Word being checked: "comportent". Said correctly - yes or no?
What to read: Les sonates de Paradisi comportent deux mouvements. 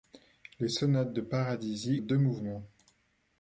no